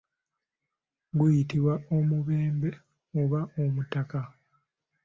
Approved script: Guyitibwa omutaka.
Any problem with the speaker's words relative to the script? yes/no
yes